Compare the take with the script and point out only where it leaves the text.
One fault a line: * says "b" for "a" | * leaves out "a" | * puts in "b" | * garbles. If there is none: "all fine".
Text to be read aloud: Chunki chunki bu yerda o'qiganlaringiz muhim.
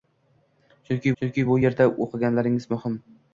all fine